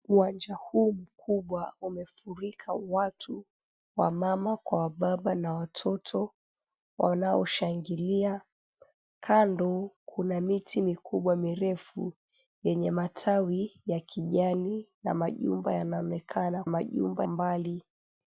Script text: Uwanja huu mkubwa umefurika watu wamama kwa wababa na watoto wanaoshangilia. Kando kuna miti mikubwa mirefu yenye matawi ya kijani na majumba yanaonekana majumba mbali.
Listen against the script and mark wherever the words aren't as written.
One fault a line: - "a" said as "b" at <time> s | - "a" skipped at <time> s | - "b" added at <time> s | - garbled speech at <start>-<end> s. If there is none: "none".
none